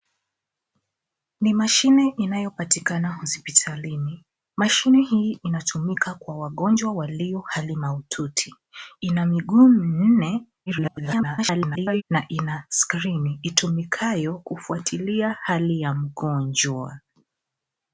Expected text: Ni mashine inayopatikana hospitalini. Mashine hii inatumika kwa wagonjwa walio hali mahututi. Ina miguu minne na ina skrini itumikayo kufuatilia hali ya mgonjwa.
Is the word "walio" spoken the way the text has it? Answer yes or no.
yes